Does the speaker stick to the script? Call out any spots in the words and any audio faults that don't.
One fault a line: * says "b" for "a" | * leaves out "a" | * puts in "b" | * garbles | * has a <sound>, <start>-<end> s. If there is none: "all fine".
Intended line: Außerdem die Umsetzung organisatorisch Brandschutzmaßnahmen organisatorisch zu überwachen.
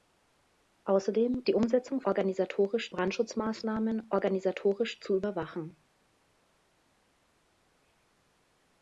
all fine